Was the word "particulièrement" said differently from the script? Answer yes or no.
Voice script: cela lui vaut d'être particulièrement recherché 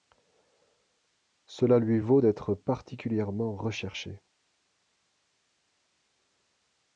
no